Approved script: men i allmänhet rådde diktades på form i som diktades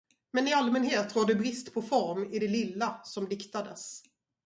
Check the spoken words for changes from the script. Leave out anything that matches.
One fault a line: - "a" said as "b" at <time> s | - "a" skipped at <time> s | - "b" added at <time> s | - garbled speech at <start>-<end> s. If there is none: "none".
- "diktades" said as "brist" at 1.4 s
- "det lilla" added at 2.4 s